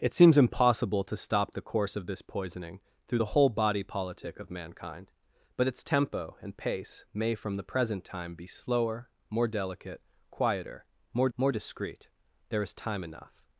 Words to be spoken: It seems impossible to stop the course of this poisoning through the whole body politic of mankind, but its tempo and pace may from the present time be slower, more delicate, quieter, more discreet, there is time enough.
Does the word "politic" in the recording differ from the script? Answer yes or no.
no